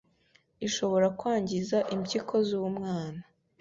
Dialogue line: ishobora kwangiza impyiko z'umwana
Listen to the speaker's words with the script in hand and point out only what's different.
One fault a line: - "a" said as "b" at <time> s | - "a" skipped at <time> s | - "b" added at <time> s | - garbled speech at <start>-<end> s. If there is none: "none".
none